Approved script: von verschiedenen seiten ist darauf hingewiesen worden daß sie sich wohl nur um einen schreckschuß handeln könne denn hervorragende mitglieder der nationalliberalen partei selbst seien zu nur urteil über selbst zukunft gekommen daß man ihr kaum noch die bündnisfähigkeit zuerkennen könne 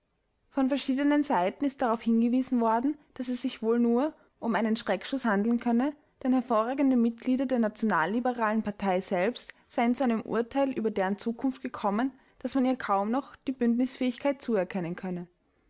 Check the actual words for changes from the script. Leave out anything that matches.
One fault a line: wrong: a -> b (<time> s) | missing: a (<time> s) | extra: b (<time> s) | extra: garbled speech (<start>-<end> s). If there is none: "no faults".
wrong: sie -> es (3.3 s)
wrong: nur -> einem (10.0 s)
wrong: selbst -> deren (10.9 s)